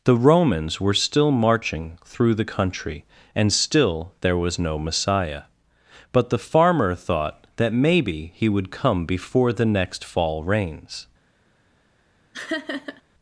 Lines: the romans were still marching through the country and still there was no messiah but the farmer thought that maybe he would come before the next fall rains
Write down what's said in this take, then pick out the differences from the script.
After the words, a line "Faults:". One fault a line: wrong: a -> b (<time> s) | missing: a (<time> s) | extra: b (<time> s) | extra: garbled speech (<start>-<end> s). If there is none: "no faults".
the romans were still marching through the country and still there was no messiah but the farmer thought that maybe he would come before the next fall rains
Faults:
no faults